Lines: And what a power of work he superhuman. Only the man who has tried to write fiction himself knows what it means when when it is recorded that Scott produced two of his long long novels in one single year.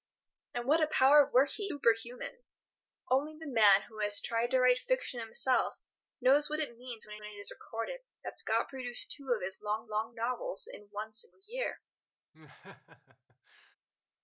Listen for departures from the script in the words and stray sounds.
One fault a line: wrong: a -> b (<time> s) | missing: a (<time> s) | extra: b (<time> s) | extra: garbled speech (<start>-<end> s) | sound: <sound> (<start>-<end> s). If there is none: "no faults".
sound: laugh (12.3-13.8 s)